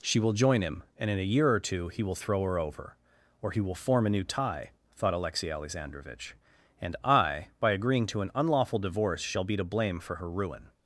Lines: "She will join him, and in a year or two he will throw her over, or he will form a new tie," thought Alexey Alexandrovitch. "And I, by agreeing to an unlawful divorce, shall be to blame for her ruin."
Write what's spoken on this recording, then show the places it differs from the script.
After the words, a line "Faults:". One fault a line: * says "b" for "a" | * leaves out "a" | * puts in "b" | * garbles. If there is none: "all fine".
"She will join him, and in a year or two he will throw her over, or he will form a new tie," thought Alexey Alexandrovitch. "And I, by agreeing to an unlawful divorce, shall be to blame for her ruin."
Faults:
all fine